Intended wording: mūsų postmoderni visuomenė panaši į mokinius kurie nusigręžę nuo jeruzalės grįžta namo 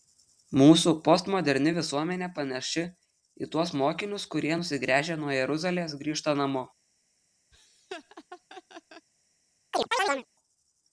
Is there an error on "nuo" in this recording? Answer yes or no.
no